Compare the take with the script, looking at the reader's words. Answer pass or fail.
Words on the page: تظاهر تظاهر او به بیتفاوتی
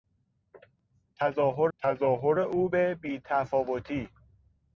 pass